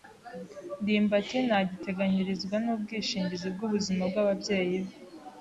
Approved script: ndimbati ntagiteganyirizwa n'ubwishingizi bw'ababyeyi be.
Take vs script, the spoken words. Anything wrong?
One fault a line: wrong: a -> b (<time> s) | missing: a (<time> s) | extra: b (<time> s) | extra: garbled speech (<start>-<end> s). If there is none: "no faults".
extra: bw'ubuzima (3.5 s)